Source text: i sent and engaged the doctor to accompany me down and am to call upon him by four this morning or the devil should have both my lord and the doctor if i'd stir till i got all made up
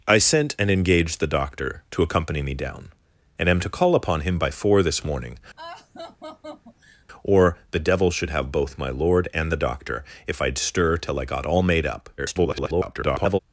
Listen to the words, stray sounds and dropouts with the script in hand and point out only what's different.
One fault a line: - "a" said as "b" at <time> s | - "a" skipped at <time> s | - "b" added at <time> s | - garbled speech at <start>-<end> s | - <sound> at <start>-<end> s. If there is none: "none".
- laugh at 5.6-7.1 s
- garbled speech at 12.2-13.4 s